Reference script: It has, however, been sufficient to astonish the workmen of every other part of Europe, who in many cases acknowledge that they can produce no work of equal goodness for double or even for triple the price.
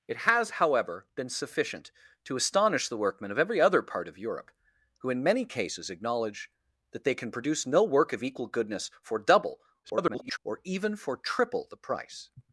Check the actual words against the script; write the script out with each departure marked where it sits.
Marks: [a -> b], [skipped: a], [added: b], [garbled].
It has, however, been sufficient to astonish the workmen of every other part of Europe, who in many cases acknowledge that they can produce no work of equal goodness for double [garbled] or even for triple the price.